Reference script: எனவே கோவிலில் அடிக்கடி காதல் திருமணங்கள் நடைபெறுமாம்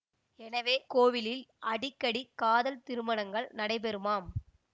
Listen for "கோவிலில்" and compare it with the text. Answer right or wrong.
right